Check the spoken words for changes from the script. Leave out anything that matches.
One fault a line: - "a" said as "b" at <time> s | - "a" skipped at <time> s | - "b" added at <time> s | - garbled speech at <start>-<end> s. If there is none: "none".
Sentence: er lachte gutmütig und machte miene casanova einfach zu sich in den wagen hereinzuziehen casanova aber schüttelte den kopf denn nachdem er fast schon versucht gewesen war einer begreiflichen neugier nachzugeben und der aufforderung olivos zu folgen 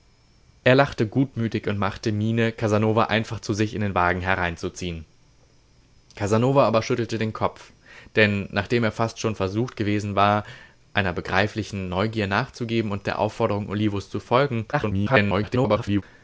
- garbled speech at 14.7-16.0 s